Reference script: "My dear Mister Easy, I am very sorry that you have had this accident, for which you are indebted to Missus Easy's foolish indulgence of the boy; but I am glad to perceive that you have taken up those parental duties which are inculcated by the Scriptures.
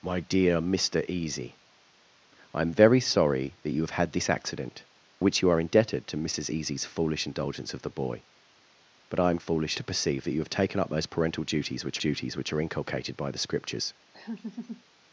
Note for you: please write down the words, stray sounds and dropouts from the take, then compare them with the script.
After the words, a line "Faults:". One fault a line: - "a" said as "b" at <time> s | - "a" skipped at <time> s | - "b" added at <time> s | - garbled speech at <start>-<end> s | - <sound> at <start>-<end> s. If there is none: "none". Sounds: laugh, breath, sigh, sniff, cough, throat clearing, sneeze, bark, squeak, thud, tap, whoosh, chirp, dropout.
"My dear Mister Easy, I am very sorry that you have had this accident, which you are indebted to Missus Easy's foolish indulgence of the boy; but I am foolish to perceive that you have taken up those parental duties which duties which are inculcated by the Scriptures.
Faults:
- "for" skipped at 4.8 s
- "glad" said as "foolish" at 9.4 s
- "duties which" added at 12.0 s
- laugh at 14.1-14.8 s